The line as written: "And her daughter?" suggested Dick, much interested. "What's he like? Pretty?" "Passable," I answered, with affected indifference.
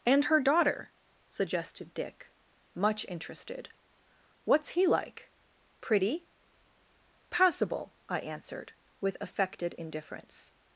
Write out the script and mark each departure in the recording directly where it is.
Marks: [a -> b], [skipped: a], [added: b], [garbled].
"And her daughter?" suggested Dick, much interested. "What's he like? Pretty?" "Passable," I answered, with affected indifference.